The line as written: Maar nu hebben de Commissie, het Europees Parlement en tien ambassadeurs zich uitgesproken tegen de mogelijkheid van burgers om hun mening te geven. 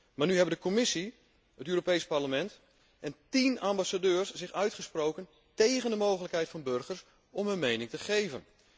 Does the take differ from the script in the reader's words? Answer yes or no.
no